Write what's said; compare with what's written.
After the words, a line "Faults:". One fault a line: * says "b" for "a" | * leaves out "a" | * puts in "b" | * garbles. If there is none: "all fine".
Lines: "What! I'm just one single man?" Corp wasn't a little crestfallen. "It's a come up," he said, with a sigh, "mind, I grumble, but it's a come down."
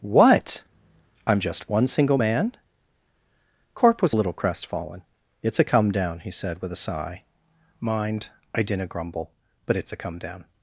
"What! I'm just one single man?" Corp was a little crestfallen. "It's a come down," he said, with a sigh, "mind, I dinna grumble, but it's a come down."
Faults:
* says "was" for "wasn't"
* says "down" for "up"
* puts in "dinna"